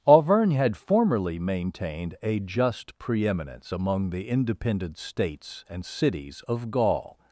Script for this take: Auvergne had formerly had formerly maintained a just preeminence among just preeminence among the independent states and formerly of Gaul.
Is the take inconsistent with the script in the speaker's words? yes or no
yes